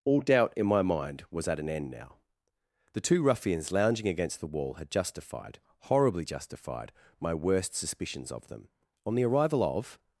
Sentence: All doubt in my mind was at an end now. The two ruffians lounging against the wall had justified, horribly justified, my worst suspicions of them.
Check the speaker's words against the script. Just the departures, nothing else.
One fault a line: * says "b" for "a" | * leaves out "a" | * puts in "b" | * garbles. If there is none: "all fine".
* puts in "On the arrival of"